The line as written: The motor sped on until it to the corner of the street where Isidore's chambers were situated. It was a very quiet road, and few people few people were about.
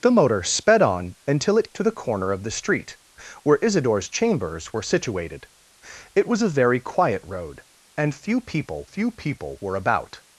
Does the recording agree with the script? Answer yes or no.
yes